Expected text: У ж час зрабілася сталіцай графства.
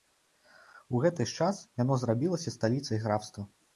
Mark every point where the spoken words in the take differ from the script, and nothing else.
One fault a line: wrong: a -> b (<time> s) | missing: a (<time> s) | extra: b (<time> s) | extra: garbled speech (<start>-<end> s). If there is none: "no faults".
extra: гэты (1.0 s)
extra: яно (1.8 s)